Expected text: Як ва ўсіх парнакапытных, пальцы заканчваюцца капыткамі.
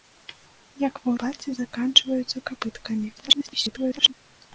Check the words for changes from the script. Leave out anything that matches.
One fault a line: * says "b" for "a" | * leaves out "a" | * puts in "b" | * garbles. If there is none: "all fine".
* leaves out "ўсіх парнакапытных"
* garbles